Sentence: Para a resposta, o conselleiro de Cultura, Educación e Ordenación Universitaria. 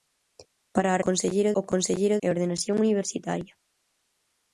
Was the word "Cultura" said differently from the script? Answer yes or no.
yes